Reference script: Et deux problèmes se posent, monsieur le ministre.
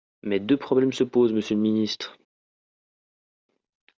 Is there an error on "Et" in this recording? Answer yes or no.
yes